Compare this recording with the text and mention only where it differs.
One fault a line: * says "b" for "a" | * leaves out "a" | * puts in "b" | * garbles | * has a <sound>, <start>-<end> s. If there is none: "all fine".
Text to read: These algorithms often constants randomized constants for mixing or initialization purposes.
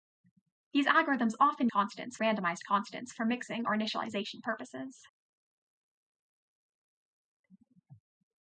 all fine